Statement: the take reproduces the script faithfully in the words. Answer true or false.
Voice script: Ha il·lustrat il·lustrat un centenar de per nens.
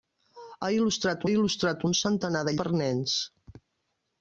true